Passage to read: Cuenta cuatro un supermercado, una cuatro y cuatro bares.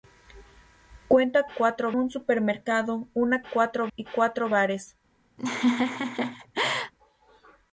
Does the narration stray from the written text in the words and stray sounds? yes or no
yes